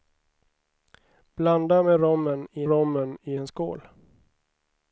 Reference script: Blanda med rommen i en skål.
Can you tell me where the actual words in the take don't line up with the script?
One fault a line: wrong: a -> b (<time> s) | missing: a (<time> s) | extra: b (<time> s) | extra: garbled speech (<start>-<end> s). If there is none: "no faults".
extra: rommen i (2.7 s)